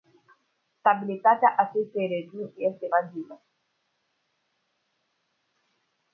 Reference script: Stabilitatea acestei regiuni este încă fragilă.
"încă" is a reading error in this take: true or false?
true